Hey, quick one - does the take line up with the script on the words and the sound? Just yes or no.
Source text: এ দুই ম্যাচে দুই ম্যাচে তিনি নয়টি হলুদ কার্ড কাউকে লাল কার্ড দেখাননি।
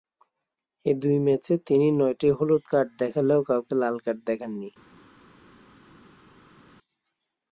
no